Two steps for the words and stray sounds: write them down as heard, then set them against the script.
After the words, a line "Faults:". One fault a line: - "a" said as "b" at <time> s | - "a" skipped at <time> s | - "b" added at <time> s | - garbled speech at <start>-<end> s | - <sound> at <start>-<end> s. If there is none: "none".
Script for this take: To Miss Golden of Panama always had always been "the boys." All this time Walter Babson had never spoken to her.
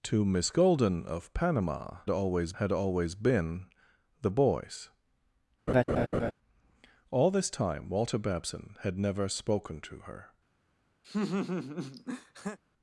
To Miss Golden of Panama always had always been "the boys." All this time Walter Babson had never spoken to her.
Faults:
- laugh at 5.7-6.3 s
- laugh at 11.0-12.6 s